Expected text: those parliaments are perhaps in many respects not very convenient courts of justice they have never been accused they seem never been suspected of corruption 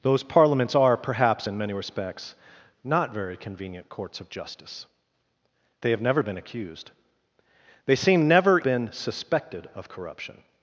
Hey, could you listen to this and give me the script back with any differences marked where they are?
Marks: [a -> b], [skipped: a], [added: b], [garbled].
those parliaments are perhaps in many respects not very convenient courts of justice they have never been accused they seem never been suspected of corruption